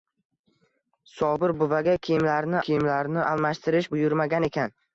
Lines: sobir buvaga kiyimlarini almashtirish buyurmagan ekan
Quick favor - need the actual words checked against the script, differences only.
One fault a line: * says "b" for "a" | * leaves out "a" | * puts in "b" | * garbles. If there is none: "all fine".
* puts in "kiyimlarini"